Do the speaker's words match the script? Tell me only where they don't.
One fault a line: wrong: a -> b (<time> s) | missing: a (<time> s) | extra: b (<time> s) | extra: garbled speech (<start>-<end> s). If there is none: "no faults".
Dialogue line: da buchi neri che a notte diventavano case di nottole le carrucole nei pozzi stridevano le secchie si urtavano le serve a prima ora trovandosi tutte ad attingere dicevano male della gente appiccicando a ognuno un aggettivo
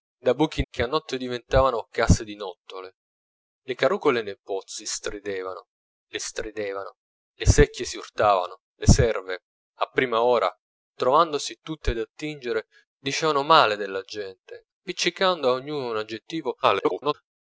missing: neri (0.6 s)
extra: stridevano le (6.2 s)
extra: garbled speech (16.6-17.1 s)